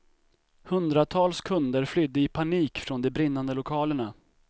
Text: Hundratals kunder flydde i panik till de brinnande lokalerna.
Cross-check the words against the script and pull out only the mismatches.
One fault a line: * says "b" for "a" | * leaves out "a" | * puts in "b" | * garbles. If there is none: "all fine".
* says "från" for "till"